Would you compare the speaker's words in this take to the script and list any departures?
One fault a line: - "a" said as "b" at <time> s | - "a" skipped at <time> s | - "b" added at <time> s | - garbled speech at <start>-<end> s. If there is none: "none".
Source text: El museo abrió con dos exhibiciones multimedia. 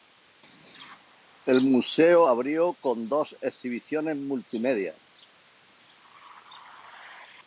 none